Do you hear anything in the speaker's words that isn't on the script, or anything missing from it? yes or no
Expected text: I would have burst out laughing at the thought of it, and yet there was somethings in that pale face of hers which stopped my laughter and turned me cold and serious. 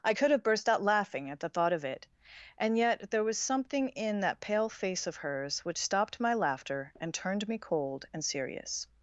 yes